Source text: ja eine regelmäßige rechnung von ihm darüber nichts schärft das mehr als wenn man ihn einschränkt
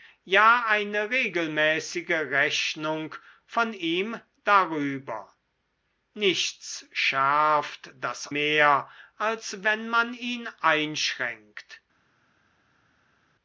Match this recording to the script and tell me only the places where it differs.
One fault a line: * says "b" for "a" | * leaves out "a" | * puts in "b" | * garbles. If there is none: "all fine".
all fine